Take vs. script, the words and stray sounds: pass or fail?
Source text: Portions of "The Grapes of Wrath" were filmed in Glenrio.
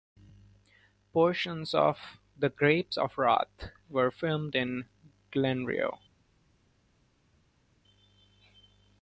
pass